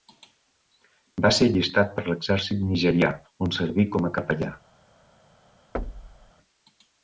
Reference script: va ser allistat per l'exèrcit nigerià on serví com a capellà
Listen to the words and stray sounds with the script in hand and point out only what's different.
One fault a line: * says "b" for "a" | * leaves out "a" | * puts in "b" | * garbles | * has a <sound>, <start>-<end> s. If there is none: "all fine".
* has a thud, 5.7-6.3 s